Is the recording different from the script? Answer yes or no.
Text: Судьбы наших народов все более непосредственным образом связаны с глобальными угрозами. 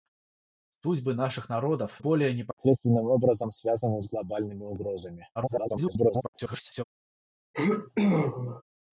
yes